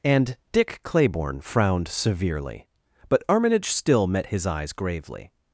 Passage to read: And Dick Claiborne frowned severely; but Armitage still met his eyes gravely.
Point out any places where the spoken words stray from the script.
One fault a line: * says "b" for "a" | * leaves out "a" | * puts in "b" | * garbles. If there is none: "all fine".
all fine